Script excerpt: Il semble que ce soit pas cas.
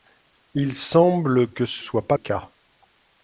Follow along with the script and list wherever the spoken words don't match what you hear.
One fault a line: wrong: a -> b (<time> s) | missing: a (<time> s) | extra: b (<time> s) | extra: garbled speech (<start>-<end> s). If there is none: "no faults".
no faults